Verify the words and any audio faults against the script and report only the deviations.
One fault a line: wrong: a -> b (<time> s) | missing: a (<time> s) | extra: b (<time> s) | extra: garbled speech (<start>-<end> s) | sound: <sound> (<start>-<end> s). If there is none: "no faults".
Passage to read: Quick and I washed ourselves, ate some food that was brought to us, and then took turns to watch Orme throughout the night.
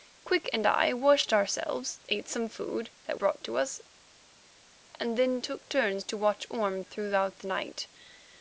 missing: was (3.2 s)